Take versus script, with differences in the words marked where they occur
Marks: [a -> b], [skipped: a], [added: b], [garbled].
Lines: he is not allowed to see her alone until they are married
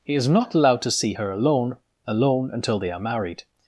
he is not allowed to see her alone [added: alone] until they are married